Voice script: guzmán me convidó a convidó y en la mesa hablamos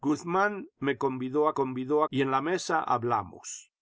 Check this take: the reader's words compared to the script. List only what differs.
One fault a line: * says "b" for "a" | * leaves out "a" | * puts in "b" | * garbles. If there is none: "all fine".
all fine